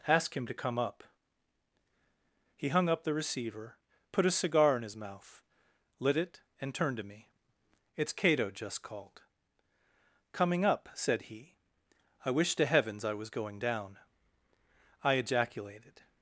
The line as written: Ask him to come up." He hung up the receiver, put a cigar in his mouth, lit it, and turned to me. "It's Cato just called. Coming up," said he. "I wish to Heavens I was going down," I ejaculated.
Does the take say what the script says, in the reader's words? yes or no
yes